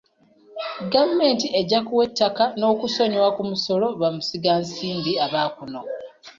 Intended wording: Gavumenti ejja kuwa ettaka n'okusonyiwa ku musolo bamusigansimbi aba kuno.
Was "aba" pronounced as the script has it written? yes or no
yes